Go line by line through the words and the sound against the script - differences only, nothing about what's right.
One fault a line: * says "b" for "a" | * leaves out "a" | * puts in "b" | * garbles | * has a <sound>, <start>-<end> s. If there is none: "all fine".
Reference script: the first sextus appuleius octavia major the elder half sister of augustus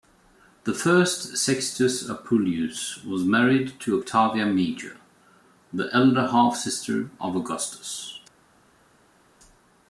* puts in "was married to"